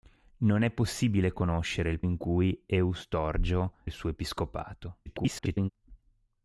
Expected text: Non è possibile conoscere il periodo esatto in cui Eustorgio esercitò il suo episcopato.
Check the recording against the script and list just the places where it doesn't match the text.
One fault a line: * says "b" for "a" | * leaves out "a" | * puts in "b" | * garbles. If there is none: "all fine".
* leaves out "periodo esatto"
* leaves out "esercitò"
* garbles